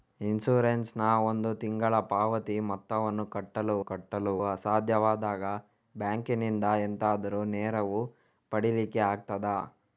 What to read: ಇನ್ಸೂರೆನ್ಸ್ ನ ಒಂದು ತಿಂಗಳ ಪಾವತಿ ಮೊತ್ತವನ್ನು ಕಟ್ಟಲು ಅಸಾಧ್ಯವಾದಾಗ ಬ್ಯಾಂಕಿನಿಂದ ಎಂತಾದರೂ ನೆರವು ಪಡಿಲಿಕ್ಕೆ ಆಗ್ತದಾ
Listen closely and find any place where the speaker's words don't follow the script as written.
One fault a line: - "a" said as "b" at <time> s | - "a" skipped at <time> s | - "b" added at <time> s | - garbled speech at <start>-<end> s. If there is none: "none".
- "ಕಟ್ಟಲು" added at 3.8 s